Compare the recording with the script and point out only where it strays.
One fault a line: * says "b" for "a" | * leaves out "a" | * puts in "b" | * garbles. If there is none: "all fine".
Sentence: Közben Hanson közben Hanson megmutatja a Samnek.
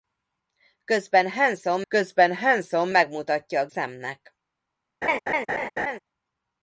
all fine